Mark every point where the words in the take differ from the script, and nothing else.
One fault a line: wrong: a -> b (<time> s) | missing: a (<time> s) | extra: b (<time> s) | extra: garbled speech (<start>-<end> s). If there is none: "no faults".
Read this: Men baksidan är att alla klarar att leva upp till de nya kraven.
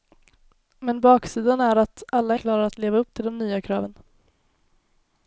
no faults